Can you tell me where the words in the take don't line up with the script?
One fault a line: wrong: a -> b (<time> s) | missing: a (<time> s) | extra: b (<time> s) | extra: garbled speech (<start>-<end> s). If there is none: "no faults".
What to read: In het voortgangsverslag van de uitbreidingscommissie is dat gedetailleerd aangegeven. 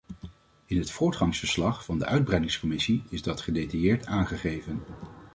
no faults